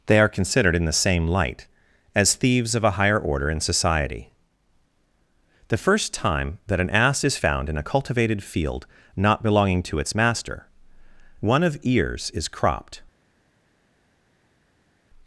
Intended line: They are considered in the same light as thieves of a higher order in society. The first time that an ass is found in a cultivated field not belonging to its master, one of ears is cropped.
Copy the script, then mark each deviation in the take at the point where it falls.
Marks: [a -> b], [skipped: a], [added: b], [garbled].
They are considered in the same light as thieves of a higher order in society. The first time that an ass is found in a cultivated field not belonging to its master, one of ears is cropped.